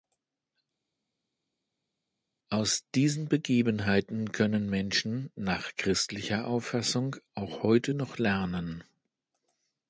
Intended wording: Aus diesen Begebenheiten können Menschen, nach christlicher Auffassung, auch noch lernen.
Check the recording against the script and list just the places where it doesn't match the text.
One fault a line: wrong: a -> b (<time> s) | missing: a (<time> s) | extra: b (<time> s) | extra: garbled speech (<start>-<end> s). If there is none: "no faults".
extra: heute (7.6 s)